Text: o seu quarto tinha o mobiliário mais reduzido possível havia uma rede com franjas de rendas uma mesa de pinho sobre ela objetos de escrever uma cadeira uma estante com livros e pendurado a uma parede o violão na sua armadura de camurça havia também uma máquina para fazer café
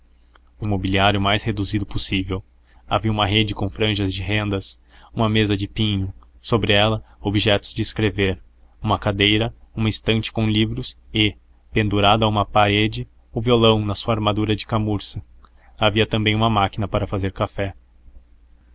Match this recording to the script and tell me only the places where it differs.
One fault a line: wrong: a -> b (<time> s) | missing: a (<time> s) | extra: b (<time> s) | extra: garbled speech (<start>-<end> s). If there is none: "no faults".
missing: seu quarto tinha (0.7 s)